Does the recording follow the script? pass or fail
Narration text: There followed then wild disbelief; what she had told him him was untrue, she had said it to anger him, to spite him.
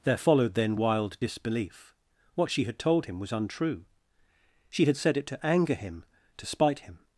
fail